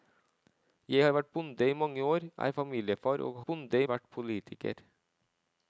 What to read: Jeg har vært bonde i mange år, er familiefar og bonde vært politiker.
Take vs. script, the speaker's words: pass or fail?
pass